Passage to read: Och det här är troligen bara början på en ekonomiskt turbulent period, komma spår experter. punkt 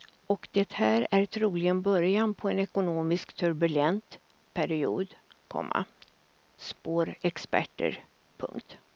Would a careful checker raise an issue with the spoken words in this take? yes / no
yes